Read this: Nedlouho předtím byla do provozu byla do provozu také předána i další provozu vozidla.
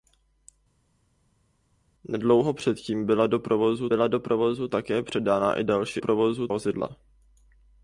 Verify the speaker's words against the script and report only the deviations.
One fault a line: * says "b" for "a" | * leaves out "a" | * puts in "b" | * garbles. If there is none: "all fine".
all fine